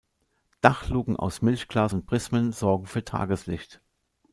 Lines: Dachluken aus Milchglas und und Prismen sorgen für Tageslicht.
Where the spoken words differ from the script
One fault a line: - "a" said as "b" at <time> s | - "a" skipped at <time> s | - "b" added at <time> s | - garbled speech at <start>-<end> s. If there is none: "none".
- "und" skipped at 2.1 s